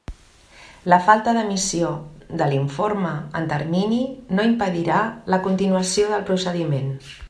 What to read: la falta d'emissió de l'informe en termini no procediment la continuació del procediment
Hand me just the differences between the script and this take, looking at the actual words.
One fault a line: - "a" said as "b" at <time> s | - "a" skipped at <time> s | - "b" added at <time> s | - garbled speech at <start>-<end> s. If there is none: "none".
- "procediment" said as "impedirà" at 4.5 s